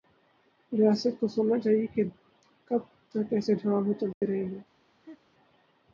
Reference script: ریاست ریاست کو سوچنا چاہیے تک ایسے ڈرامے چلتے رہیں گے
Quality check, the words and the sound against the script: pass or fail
fail